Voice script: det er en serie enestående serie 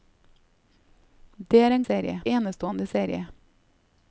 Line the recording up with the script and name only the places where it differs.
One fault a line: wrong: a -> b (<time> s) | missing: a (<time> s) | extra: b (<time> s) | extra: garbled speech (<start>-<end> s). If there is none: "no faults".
no faults